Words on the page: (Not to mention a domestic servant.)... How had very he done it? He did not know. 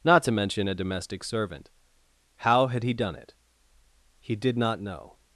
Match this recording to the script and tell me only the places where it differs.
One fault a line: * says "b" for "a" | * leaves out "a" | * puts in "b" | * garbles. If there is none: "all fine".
* leaves out "very"